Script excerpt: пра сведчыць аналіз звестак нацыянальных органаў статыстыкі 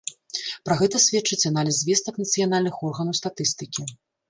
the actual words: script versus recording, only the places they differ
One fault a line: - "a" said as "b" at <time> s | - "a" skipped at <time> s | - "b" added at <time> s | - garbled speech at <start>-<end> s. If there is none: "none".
- "гэта" added at 0.8 s